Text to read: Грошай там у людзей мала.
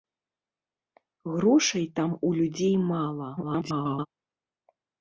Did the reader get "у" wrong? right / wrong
right